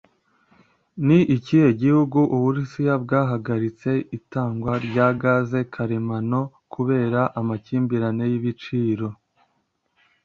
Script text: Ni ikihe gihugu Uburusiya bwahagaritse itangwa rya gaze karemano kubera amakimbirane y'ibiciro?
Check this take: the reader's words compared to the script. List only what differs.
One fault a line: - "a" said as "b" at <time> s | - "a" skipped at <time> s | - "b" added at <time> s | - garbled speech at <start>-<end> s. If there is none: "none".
none